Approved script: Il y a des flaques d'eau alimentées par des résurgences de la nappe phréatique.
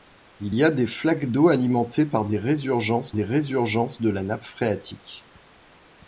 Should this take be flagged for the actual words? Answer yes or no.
yes